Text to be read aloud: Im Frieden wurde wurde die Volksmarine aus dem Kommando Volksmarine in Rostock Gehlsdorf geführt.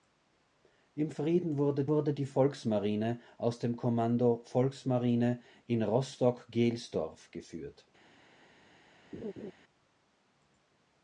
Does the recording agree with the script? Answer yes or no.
yes